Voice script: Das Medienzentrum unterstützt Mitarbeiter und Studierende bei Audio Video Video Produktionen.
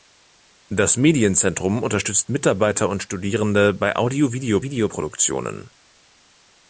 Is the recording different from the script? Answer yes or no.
no